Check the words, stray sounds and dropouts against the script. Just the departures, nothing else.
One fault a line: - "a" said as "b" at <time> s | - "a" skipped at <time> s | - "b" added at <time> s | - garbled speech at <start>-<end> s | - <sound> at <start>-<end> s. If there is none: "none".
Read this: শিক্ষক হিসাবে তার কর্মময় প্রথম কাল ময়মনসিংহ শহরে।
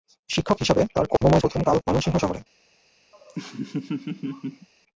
- dropout at 1.2-1.2 s
- laugh at 3.1-4.7 s